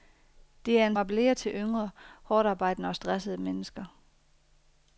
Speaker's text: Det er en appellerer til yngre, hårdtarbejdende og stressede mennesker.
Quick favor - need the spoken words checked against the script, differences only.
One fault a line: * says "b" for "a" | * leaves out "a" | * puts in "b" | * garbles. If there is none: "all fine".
all fine